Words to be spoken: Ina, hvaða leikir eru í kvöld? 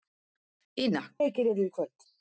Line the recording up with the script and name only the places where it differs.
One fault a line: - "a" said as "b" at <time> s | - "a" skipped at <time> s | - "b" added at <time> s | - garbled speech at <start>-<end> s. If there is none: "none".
- "hvaða" skipped at 1.0 s